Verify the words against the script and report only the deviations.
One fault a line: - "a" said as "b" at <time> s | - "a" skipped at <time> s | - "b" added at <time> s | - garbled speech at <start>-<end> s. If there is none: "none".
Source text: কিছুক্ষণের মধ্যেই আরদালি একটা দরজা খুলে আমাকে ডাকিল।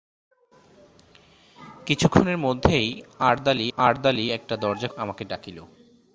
- "আরদালি" added at 3.8 s
- "খুলে" skipped at 4.9 s